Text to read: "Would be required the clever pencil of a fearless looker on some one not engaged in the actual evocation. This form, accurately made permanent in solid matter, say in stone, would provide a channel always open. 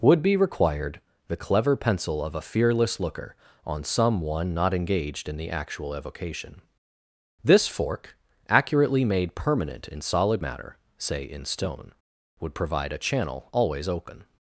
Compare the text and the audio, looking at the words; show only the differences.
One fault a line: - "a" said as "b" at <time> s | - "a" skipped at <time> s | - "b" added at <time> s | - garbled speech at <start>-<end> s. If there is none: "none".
- "form" said as "fork" at 7.7 s